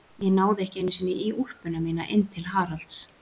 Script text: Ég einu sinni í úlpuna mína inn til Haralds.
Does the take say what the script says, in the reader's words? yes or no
no